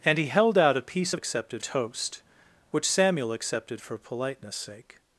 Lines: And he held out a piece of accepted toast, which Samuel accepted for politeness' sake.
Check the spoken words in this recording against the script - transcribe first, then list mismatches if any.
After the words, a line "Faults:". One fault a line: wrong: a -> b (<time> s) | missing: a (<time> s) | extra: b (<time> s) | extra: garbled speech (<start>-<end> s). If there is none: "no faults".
And he held out a piece of accepted toast, which Samuel accepted for politeness' sake.
Faults:
no faults